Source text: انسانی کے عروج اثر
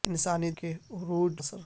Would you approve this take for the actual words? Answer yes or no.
yes